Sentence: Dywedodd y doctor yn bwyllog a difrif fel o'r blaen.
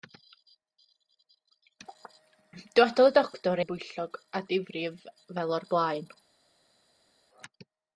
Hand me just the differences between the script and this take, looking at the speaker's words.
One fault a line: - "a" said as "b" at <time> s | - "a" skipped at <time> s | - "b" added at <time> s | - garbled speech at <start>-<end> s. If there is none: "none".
none